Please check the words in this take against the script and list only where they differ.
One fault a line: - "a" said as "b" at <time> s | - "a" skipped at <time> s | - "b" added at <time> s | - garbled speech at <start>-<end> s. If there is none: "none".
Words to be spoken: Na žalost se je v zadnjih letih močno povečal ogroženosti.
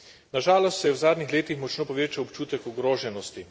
- "občutek" added at 2.2 s